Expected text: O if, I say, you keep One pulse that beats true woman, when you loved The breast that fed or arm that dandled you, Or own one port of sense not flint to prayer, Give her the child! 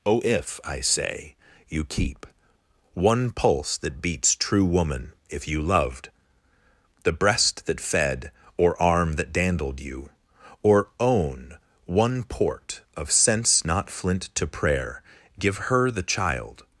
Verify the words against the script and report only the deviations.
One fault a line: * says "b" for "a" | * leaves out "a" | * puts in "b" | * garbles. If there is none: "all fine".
* says "if" for "when"